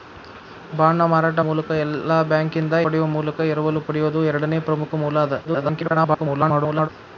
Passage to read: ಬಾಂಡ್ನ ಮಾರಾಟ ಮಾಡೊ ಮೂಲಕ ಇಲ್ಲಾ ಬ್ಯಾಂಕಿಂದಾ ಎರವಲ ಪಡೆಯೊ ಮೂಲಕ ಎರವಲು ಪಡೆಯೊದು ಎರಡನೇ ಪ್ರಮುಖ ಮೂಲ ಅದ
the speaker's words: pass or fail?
fail